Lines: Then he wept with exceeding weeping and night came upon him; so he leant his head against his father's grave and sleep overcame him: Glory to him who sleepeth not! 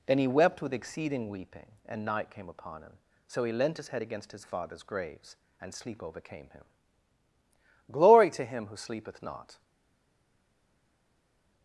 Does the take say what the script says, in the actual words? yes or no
no